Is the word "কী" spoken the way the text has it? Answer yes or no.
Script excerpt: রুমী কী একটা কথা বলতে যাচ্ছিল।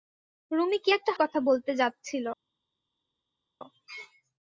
yes